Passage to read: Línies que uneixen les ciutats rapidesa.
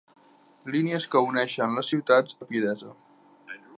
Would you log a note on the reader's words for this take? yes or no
no